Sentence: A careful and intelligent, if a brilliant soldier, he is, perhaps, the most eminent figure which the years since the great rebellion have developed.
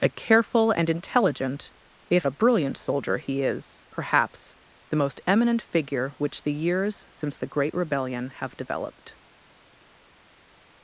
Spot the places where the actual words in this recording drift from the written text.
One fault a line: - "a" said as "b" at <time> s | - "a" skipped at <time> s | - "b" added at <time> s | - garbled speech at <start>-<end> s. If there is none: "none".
none